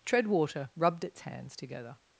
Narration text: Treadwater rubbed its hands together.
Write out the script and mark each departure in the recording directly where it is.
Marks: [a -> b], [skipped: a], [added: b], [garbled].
Treadwater rubbed its hands together.